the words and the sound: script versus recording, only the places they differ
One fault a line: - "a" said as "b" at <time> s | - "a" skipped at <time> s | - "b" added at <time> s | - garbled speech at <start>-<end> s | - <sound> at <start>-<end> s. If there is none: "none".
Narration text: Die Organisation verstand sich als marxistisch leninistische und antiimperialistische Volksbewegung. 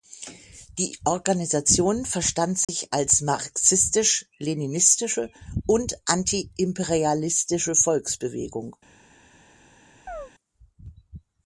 - dropout at 2.6-2.7 s
- chirp at 10.1-10.3 s